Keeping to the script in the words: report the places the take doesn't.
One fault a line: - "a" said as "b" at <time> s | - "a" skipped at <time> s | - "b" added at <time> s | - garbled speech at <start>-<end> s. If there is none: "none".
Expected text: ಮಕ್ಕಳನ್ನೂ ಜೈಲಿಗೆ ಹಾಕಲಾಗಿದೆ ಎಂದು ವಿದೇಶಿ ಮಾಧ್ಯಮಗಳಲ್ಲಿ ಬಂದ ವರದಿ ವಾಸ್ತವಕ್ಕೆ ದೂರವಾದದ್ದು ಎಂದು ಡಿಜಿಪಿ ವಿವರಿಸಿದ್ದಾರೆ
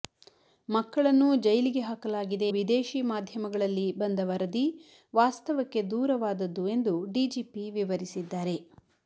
- "ಎಂದು" skipped at 2.5 s